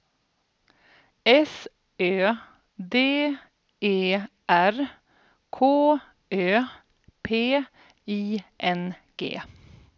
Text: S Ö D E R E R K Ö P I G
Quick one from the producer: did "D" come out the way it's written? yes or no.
yes